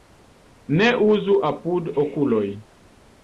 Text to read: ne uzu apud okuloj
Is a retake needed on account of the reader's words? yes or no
no